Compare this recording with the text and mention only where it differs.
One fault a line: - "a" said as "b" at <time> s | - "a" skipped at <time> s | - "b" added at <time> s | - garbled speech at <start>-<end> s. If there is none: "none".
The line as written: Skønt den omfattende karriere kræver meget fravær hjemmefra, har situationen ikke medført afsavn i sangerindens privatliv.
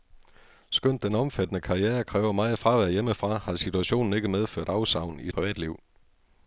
- "sangerindens" skipped at 5.3 s